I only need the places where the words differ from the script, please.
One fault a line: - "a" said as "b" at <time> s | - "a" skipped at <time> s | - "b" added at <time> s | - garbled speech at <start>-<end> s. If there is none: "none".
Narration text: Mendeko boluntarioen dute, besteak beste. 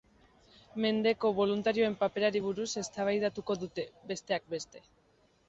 - "paperari buruz eztabaidatuko" added at 2.0 s